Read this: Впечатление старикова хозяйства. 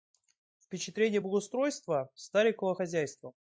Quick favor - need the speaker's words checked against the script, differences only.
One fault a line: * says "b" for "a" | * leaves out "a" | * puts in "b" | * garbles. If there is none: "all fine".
* puts in "благоустройства"